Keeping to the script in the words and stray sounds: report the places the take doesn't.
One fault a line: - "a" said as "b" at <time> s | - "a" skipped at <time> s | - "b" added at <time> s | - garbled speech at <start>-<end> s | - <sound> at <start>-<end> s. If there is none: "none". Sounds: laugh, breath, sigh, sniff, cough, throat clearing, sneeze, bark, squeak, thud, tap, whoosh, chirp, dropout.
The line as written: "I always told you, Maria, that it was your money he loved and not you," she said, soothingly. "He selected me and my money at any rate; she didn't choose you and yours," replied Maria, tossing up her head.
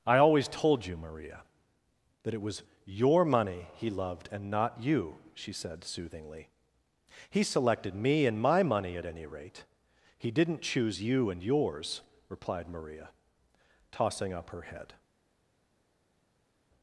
- "she" said as "he" at 10.2 s